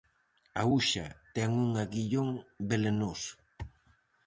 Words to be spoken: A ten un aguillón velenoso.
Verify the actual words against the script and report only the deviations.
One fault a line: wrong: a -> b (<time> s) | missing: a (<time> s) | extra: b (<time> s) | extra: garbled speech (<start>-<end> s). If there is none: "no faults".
extra: uxa (0.8 s)